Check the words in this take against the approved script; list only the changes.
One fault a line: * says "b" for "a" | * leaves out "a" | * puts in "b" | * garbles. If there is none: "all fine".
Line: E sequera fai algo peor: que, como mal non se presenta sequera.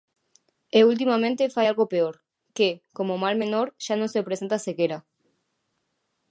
* says "ultimamente" for "sequera"
* puts in "menor xa"